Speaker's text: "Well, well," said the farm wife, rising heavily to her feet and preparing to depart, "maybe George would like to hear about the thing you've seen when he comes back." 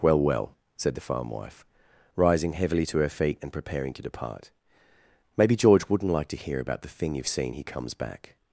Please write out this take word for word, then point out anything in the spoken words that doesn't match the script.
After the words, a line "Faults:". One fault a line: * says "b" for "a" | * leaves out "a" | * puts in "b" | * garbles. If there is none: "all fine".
"Well, well," said the farm wife, rising heavily to her feet and preparing to depart, "maybe George wouldn't like to hear about the thing you've seen he comes back."
Faults:
* says "wouldn't" for "would"
* leaves out "when"